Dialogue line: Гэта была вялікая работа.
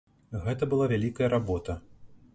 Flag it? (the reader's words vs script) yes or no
no